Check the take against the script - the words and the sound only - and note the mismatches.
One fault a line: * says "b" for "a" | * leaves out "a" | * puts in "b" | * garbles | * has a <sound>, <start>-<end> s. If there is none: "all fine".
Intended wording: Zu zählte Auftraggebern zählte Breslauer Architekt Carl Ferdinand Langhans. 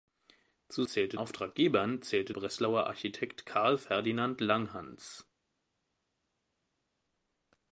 all fine